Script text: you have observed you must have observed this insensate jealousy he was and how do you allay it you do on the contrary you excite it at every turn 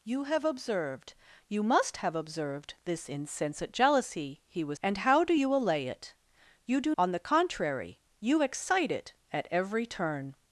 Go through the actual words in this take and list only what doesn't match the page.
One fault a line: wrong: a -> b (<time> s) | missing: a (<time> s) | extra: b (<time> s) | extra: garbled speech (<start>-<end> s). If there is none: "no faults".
no faults